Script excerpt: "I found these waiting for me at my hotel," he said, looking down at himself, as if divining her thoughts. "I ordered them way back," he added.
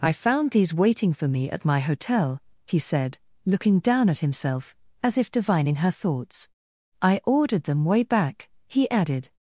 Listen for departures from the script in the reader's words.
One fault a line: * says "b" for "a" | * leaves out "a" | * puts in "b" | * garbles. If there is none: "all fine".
all fine